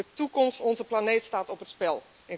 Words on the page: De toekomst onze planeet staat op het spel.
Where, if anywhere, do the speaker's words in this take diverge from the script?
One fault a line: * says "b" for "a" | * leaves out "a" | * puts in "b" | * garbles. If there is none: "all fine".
all fine